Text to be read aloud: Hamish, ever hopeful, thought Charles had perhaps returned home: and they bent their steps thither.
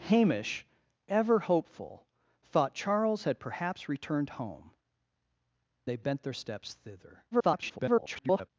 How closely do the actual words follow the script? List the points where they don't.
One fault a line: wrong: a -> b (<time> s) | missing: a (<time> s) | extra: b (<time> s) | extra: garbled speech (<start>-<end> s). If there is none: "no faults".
missing: and (4.7 s)
extra: garbled speech (7.3-8.5 s)